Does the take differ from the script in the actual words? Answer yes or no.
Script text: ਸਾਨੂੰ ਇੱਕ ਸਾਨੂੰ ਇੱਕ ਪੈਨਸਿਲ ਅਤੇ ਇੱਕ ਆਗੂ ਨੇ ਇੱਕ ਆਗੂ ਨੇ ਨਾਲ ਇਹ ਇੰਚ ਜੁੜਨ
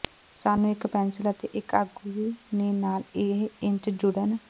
yes